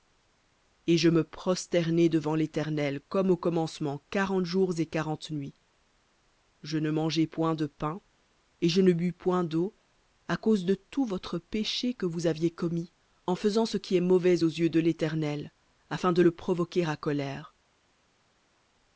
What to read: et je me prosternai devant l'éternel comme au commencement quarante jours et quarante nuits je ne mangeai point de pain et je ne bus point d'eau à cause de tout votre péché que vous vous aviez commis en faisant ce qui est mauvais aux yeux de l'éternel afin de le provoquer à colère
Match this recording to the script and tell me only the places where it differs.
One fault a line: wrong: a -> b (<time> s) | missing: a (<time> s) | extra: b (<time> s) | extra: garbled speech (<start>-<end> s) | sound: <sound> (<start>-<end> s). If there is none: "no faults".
missing: vous (12.3 s)